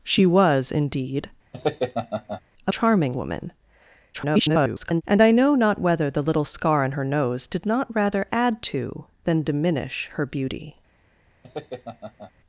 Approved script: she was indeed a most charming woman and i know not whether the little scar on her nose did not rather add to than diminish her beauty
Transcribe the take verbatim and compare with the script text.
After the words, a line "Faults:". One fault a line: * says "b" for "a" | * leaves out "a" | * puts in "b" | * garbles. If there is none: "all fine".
she was indeed a charming woman [garbled] and i know not whether the little scar on her nose did not rather add to than diminish her beauty
Faults:
* leaves out "most"
* garbles